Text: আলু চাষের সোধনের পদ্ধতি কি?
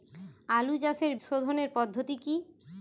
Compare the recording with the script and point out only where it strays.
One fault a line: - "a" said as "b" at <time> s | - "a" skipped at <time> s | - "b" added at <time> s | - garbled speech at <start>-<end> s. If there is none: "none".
none